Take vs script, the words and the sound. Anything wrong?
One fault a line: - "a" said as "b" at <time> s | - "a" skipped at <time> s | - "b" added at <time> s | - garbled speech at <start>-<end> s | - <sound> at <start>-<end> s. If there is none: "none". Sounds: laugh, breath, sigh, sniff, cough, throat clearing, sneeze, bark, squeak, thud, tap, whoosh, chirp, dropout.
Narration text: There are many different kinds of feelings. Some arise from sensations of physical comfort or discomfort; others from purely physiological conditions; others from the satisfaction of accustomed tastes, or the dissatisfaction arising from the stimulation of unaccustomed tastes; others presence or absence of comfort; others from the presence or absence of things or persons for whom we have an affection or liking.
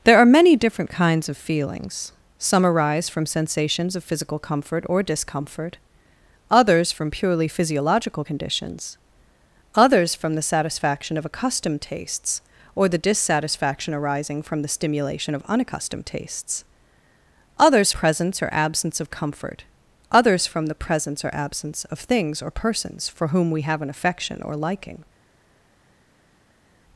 none